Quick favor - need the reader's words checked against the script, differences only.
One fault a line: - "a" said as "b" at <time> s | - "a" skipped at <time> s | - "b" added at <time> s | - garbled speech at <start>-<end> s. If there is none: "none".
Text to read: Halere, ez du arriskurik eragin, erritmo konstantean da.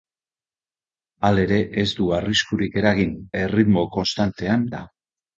none